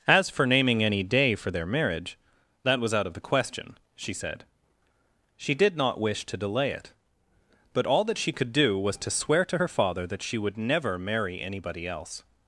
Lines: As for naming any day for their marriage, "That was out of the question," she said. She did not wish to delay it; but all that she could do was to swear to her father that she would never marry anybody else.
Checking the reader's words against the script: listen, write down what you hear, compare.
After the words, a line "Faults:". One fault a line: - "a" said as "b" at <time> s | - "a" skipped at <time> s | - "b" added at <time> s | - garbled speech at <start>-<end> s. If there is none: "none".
As for naming any day for their marriage, "That was out of the question," she said. She did not wish to delay it; but all that she could do was to swear to her father that she would never marry anybody else.
Faults:
none